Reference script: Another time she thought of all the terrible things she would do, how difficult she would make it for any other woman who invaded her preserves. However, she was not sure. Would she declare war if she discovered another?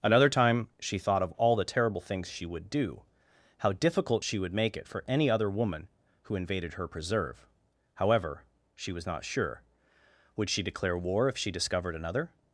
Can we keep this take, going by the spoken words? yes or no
no